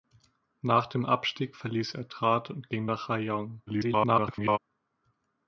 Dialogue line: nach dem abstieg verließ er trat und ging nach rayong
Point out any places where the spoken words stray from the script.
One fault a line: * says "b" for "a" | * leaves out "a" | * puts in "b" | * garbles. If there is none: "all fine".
* garbles